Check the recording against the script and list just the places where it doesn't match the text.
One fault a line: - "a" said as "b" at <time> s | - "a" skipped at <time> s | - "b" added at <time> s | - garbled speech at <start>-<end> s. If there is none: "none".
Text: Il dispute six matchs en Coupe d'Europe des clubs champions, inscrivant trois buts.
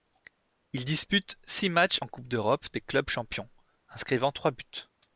none